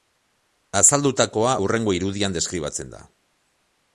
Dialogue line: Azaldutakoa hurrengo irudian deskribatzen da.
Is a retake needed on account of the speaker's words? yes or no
no